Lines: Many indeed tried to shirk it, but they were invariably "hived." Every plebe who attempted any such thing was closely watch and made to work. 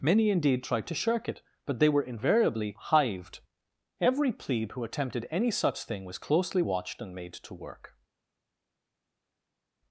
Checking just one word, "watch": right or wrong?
wrong